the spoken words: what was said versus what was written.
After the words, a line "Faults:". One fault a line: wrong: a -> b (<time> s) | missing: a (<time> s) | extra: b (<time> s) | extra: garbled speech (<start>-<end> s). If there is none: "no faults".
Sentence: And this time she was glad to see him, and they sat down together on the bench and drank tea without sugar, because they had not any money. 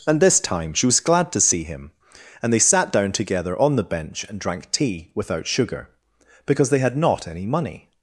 And this time she was glad to see him, and they sat down together on the bench and drank tea without sugar, because they had not any money.
Faults:
no faults